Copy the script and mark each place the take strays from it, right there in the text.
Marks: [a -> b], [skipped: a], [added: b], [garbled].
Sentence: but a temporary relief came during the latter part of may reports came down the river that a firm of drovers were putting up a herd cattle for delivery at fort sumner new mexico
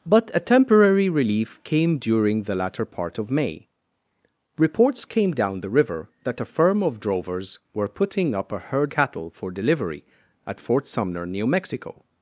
but a temporary relief came during the latter part of may reports came down the river that a firm of drovers were putting up a herd cattle for delivery at fort sumner new mexico